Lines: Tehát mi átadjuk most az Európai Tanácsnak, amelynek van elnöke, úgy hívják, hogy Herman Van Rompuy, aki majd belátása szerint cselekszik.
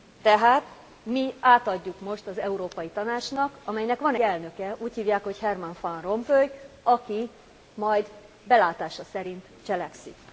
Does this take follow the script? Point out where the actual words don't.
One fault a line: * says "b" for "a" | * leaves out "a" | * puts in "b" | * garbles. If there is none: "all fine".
all fine